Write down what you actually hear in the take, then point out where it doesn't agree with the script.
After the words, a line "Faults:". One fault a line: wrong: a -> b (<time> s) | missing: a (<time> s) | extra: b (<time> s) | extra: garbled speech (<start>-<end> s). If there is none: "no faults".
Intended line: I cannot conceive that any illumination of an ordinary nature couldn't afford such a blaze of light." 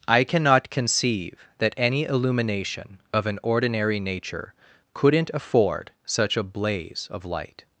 I cannot conceive that any illumination of an ordinary nature couldn't afford such a blaze of light."
Faults:
no faults